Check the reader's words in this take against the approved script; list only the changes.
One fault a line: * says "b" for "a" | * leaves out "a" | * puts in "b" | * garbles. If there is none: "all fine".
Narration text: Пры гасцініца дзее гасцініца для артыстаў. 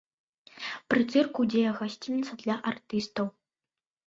* says "цырку" for "гасцініца"